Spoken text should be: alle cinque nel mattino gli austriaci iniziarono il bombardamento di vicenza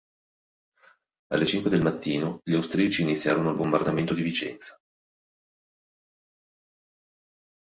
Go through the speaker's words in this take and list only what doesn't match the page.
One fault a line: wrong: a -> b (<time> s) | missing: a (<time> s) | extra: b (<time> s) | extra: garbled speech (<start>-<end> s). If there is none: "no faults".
wrong: nel -> del (1.7 s)